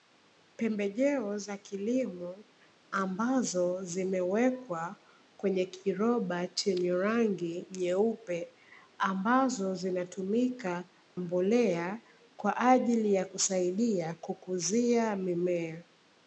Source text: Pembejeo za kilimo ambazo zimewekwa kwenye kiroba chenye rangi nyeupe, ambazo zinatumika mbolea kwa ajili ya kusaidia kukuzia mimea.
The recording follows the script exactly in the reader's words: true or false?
true